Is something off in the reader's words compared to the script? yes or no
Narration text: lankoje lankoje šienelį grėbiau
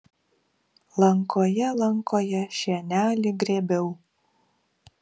no